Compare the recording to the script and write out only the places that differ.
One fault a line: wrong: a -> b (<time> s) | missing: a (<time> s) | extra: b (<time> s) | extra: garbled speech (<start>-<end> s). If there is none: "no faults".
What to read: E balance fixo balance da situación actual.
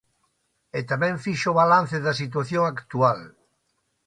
wrong: balance -> tamén (0.9 s)